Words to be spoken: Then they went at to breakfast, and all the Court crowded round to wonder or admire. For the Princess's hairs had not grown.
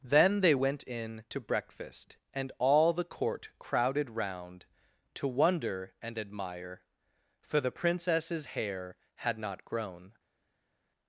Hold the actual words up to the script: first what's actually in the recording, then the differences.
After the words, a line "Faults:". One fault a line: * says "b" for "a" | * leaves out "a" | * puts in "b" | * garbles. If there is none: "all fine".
Then they went in to breakfast, and all the Court crowded round to wonder and admire. For the Princess's hair had not grown.
Faults:
* says "in" for "at"
* says "and" for "or"
* says "hair" for "hairs"